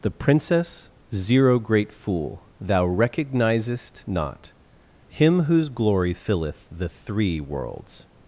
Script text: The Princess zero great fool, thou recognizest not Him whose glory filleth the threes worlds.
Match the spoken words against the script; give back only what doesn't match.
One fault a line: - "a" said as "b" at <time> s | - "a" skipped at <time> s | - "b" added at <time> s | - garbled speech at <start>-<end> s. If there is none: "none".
- "threes" said as "three" at 6.9 s